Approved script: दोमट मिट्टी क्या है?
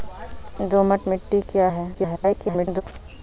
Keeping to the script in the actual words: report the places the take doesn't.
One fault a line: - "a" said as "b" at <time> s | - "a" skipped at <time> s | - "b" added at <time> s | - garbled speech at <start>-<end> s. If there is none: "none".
- garbled speech at 1.9-2.8 s